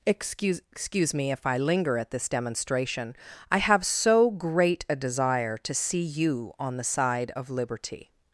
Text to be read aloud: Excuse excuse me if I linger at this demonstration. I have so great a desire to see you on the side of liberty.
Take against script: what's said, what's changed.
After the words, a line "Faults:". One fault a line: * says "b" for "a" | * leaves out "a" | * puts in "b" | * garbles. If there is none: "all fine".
Excuse excuse me if I linger at this demonstration. I have so great a desire to see you on the side of liberty.
Faults:
all fine